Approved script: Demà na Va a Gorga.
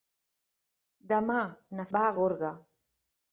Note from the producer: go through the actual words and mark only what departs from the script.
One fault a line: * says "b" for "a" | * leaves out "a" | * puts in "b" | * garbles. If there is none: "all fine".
all fine